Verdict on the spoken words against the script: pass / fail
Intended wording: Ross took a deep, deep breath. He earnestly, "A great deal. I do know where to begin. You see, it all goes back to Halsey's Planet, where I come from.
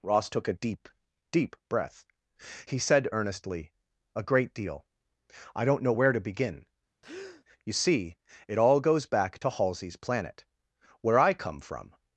fail